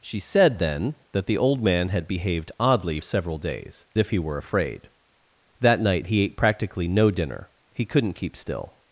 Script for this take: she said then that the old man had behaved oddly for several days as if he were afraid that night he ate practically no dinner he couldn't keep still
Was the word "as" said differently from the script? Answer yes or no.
yes